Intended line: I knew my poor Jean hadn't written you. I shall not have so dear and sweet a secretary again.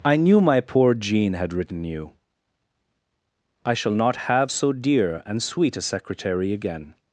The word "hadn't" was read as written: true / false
false